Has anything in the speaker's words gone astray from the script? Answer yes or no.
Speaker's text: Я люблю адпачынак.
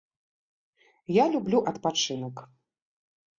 no